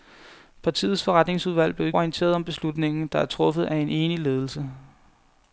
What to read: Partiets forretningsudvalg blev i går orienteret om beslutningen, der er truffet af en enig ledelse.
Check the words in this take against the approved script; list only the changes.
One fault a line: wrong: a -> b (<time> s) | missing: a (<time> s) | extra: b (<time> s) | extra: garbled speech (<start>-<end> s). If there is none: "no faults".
missing: går (1.9 s)